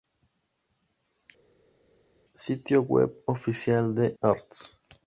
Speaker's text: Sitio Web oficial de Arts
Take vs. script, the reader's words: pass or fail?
pass